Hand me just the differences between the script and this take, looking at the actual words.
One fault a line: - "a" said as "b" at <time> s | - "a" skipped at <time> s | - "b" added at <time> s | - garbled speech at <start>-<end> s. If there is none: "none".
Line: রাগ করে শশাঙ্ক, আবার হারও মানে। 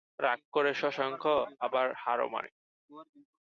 none